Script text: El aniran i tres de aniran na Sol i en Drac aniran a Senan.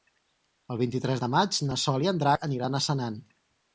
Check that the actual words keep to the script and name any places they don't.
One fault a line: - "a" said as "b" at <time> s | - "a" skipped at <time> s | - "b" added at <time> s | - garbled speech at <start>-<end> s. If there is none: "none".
- "aniran" said as "vint" at 0.8 s
- "aniran" said as "maig" at 1.3 s